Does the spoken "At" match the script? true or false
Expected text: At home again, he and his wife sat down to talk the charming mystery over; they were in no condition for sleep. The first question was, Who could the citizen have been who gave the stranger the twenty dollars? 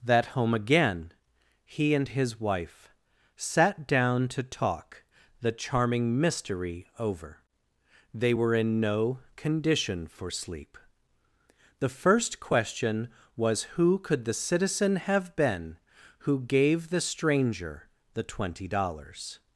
false